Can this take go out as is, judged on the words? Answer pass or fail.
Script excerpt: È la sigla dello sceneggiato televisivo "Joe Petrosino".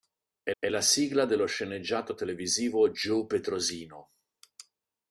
fail